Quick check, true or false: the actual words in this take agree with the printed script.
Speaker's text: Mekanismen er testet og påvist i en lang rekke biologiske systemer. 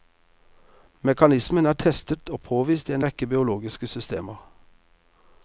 false